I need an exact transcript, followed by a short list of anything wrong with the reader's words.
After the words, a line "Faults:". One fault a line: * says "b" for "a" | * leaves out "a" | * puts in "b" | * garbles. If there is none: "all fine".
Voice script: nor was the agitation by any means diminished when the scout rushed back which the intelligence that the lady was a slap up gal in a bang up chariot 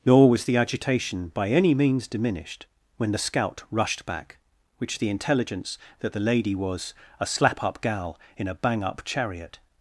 nor was the agitation by any means diminished when the scout rushed back which the intelligence that the lady was a slap up gal in a bang up chariot
Faults:
all fine